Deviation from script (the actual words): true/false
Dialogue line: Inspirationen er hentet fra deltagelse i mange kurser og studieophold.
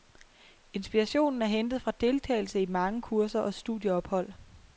false